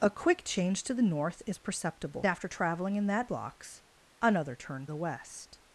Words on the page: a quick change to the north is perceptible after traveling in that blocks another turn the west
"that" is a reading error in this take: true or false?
false